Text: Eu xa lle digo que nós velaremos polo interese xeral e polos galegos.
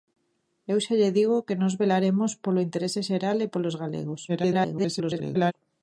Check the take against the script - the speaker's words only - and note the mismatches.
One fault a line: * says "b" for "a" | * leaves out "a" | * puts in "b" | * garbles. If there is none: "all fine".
* garbles